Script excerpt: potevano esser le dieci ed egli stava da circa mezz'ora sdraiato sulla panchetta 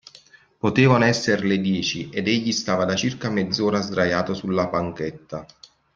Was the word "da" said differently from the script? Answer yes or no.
no